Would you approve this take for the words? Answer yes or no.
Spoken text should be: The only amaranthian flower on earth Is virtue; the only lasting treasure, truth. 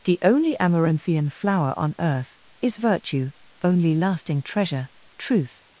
no